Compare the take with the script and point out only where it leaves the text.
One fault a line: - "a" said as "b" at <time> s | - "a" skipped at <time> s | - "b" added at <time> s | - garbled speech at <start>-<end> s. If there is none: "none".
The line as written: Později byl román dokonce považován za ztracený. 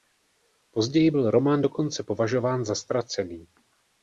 none